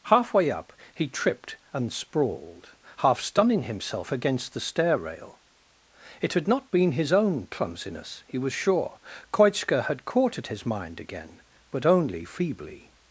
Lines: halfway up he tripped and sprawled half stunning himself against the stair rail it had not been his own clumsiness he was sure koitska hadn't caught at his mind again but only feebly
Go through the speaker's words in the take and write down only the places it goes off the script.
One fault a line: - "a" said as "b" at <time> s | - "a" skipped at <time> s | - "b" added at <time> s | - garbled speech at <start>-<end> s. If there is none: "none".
- "hadn't" said as "had" at 9.8 s